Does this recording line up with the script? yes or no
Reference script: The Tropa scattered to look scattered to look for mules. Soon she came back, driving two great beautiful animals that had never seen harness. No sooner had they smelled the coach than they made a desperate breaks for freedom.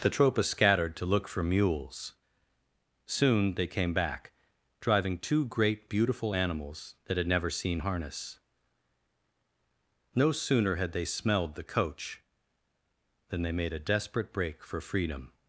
no